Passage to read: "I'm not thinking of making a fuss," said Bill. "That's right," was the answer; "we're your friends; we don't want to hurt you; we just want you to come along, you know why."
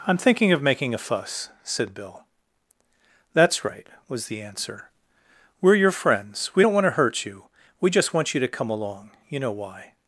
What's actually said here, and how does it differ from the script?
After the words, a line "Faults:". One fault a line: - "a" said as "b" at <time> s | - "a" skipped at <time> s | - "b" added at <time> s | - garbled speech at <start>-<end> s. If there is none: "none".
"I'm thinking of making a fuss," said Bill. "That's right," was the answer; "we're your friends; we don't want to hurt you; we just want you to come along, you know why."
Faults:
- "not" skipped at 0.2 s